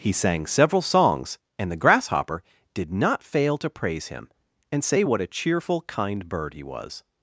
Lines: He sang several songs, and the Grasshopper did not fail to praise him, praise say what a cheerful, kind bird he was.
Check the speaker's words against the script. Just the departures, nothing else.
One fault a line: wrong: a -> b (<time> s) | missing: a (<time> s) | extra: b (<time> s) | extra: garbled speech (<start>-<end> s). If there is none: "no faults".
wrong: praise -> and (4.7 s)